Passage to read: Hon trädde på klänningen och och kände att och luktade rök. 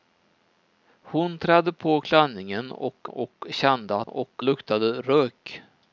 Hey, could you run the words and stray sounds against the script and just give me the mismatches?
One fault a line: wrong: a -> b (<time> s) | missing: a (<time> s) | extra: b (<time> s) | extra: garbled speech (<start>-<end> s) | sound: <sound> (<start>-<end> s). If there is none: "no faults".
no faults